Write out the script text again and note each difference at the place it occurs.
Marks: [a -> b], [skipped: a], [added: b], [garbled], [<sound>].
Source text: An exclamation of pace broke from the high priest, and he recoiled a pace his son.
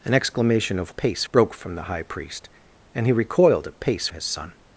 An exclamation of pace broke from the high priest, and he recoiled a pace his son.